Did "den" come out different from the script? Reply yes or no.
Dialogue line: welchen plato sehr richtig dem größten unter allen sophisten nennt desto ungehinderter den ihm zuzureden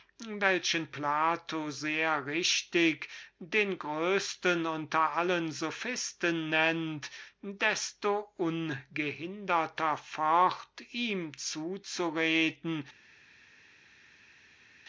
yes